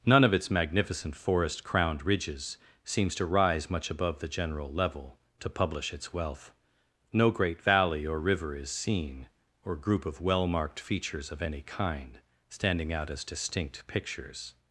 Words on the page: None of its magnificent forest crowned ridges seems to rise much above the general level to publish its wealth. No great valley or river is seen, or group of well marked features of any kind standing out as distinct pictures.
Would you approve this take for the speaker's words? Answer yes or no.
yes